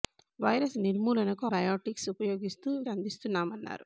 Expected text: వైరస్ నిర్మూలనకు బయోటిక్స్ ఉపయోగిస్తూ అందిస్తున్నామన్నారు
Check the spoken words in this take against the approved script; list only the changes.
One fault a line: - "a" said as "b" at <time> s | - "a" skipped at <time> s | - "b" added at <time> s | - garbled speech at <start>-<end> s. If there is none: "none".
none